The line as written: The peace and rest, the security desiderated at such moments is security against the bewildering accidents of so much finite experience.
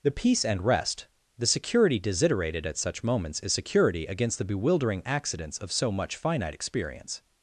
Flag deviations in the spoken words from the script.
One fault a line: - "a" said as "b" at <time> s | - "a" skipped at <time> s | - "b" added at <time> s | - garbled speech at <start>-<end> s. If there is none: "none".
none